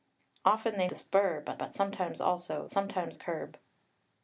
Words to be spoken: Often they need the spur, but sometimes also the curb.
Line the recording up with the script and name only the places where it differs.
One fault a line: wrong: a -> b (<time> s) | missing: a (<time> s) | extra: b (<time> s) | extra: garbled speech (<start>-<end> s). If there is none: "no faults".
missing: need (0.9 s)
extra: but (1.6 s)
wrong: the -> sometimes (2.7 s)